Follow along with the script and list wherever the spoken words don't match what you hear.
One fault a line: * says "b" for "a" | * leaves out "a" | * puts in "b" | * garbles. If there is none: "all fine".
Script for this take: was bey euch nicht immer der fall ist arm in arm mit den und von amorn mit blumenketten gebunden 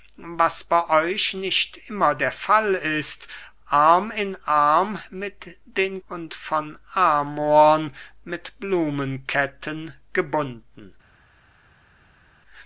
all fine